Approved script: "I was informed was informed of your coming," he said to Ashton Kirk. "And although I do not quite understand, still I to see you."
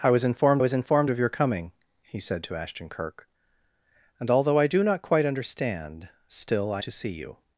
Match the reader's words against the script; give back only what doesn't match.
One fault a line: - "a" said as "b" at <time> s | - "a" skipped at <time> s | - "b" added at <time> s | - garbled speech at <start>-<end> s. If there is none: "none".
none